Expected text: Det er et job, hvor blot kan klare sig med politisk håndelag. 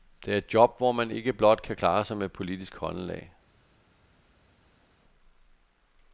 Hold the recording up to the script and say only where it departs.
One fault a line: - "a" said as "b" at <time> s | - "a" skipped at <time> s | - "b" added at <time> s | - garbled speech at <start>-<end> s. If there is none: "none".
- "man ikke" added at 0.9 s